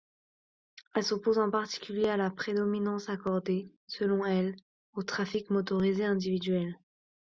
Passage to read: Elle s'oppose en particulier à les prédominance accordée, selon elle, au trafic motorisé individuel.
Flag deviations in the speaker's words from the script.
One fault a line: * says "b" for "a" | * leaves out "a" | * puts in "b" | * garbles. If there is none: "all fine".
* says "la" for "les"